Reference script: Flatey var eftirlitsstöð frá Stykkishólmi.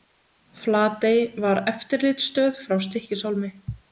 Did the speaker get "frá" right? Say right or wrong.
right